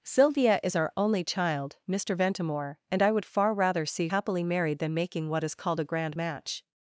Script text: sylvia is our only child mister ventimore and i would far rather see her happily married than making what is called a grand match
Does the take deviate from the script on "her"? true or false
true